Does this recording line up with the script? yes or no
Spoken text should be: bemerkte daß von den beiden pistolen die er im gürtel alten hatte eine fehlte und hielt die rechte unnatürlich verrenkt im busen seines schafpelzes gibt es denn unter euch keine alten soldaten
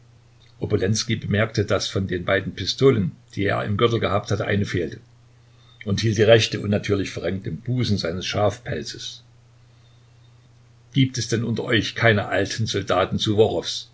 no